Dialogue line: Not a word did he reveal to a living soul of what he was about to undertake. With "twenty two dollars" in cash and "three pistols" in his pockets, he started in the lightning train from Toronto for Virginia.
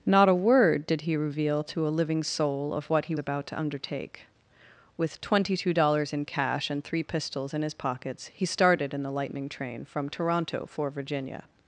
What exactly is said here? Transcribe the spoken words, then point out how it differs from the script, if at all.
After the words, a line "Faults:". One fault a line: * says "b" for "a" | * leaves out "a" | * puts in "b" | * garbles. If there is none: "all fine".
Not a word did he reveal to a living soul of what he about to undertake. With "twenty two dollars" in cash and "three pistols" in his pockets, he started in the lightning train from Toronto for Virginia.
Faults:
* leaves out "was"